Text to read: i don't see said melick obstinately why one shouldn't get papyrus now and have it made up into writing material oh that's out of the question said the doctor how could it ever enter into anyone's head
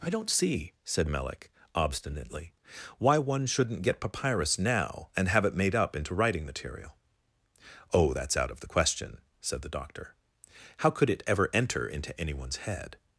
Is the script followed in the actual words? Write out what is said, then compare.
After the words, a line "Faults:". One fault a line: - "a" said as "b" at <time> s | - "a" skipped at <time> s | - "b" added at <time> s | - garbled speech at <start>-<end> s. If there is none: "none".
i don't see said melick obstinately why one shouldn't get papyrus now and have it made up into writing material oh that's out of the question said the doctor how could it ever enter into anyone's head
Faults:
none